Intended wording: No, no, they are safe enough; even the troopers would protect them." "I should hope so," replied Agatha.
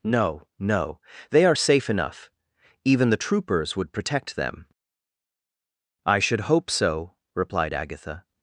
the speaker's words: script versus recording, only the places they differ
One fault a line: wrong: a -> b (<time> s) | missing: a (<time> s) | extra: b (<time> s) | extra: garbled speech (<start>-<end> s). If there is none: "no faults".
no faults